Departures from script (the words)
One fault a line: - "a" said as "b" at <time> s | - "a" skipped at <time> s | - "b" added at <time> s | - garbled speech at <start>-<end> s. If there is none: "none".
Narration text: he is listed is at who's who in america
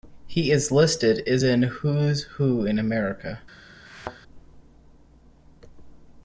- "at" said as "in" at 1.4 s